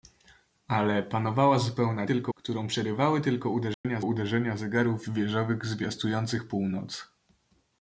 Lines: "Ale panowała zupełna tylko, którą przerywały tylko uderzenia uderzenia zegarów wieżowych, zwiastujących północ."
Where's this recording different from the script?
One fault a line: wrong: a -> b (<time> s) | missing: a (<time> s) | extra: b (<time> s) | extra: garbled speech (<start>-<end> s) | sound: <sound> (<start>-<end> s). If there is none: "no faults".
sound: dropout (3.7-3.8 s)